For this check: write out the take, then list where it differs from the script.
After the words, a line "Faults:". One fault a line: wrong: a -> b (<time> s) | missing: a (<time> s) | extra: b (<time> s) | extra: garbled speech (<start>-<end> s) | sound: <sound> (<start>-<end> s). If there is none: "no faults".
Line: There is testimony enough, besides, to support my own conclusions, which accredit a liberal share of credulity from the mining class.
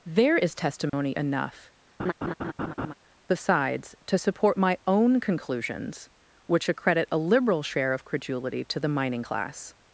There is testimony enough, besides, to support my own conclusions, which accredit a liberal share of credulity to the mining class.
Faults:
sound: dropout (0.9-0.9 s)
sound: laugh (2.0-2.9 s)
wrong: from -> to (8.6 s)